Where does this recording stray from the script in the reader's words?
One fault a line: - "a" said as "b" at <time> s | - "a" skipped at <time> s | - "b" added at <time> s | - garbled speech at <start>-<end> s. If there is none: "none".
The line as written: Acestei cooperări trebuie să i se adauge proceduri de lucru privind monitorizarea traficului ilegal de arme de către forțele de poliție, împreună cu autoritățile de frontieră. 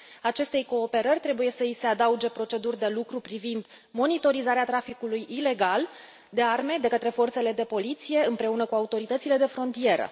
none